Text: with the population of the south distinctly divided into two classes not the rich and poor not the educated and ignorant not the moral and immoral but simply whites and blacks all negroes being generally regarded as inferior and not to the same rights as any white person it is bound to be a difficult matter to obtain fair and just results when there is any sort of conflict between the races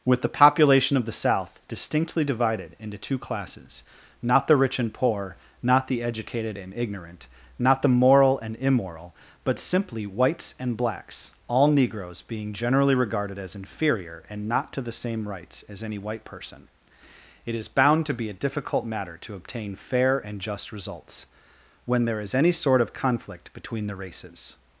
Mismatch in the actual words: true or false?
false